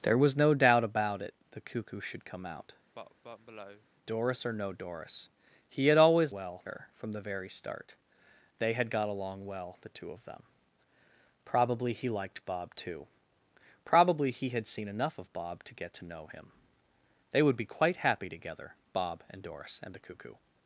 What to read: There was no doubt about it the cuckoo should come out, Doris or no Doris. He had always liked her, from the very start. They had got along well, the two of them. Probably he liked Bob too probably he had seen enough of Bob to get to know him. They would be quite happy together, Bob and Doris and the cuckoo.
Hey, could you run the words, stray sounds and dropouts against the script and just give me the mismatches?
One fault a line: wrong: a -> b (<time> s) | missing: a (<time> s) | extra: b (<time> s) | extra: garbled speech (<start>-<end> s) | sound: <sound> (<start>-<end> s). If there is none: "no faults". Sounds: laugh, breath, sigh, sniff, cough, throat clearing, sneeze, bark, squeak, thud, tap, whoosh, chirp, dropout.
sound: cough (2.9-3.9 s)
wrong: liked -> well (6.3 s)